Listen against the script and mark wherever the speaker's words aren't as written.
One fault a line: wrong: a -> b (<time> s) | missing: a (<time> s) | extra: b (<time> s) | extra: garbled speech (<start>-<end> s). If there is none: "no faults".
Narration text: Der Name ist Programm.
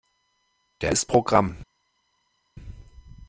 missing: Name (0.9 s)